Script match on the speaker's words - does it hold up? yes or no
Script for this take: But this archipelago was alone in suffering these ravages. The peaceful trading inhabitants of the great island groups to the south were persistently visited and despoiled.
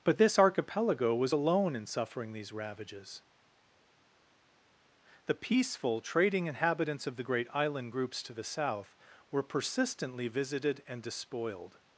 yes